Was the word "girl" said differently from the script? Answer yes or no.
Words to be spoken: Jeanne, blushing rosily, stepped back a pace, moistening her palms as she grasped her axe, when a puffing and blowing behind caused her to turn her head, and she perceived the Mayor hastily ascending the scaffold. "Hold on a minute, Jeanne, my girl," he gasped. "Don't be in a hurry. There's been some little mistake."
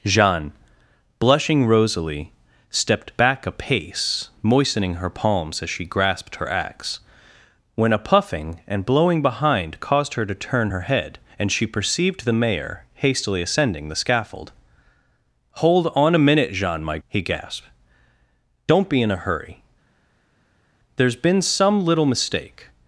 yes